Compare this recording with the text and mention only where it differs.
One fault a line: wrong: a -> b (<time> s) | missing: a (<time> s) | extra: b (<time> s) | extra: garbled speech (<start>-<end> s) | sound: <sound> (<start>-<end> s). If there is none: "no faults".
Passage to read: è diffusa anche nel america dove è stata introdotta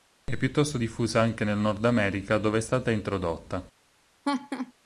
extra: piuttosto (0.3 s)
extra: nord (1.6 s)
sound: laugh (4.2-4.7 s)